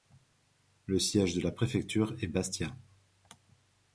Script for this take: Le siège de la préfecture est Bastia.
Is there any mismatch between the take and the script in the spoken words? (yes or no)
no